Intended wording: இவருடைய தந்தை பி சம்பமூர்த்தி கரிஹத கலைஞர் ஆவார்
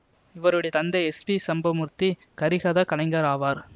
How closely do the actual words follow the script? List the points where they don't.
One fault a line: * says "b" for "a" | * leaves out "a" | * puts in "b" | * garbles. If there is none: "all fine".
* puts in "எஸ்"